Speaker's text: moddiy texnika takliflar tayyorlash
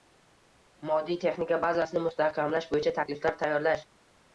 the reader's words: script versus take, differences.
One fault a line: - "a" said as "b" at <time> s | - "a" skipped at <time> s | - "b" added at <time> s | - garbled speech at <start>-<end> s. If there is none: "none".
- "bazasini mustahkamlash bo‘yicha" added at 1.7 s